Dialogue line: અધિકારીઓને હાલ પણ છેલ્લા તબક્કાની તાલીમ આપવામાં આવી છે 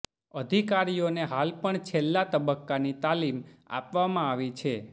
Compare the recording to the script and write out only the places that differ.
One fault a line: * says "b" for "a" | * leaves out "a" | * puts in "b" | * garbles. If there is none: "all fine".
all fine